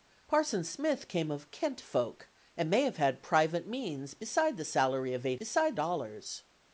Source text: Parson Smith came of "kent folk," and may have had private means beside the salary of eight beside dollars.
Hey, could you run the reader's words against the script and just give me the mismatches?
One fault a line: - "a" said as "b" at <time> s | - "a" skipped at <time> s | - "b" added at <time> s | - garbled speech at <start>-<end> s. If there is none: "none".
none